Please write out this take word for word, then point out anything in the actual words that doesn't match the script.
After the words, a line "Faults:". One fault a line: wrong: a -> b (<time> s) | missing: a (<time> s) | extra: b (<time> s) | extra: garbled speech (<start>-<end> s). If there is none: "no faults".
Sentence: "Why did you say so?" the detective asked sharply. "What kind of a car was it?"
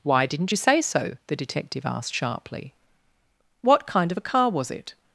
"Why didn't you say so?" the detective asked sharply. "What kind of a car was it?"
Faults:
wrong: did -> didn't (0.2 s)